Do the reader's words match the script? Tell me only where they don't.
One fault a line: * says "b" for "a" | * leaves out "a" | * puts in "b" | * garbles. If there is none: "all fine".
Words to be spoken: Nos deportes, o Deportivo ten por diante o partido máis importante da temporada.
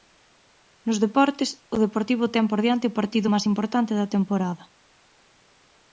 all fine